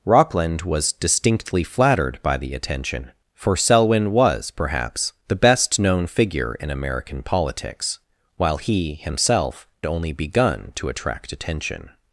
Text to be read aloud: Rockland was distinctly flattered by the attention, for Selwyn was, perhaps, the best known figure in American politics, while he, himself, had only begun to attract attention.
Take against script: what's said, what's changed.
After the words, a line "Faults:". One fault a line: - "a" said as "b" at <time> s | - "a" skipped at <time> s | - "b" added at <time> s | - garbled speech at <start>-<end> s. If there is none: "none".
Rockland was distinctly flattered by the attention, for Selwyn was, perhaps, the best known figure in American politics, while he, himself, only begun to attract attention.
Faults:
- "had" skipped at 9.7 s